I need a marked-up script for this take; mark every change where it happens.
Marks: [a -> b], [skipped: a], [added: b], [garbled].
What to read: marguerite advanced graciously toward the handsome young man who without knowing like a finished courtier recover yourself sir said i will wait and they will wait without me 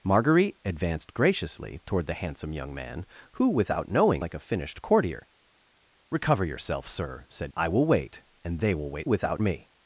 marguerite advanced graciously toward the handsome young man who without knowing like a finished courtier recover yourself sir said i will wait and they will wait without me